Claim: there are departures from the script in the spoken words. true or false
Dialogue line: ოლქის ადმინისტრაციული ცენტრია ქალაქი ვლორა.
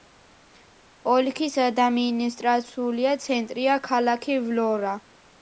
false